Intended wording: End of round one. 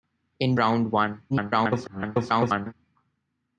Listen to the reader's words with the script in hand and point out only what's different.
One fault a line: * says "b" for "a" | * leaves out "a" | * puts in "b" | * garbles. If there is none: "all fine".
* leaves out "of"
* garbles